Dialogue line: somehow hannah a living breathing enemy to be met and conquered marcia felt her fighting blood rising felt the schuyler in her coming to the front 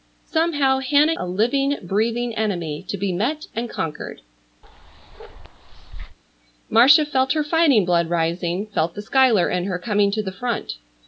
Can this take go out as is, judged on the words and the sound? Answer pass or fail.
fail